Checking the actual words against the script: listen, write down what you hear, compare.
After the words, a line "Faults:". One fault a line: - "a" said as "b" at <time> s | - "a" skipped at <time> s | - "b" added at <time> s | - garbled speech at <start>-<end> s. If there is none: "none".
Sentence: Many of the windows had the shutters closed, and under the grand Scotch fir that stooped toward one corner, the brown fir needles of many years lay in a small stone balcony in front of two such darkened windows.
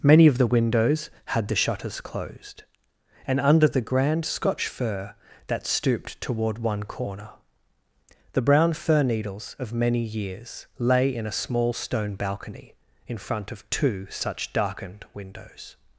Many of the windows had the shutters closed, and under the grand Scotch fir that stooped toward one corner, the brown fir needles of many years lay in a small stone balcony in front of two such darkened windows.
Faults:
none